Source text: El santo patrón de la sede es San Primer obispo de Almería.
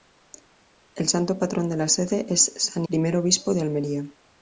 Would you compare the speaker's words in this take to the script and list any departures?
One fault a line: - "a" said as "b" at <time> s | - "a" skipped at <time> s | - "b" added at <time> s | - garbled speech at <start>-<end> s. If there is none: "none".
none